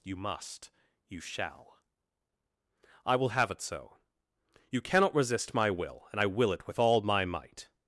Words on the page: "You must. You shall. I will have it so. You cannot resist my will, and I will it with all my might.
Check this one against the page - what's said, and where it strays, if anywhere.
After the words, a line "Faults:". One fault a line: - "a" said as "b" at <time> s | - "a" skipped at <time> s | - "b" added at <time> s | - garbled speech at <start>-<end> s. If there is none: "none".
"You must. You shall. I will have it so. You cannot resist my will, and I will it with all my might.
Faults:
none